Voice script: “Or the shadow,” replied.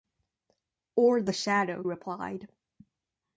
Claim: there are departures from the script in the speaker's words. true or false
false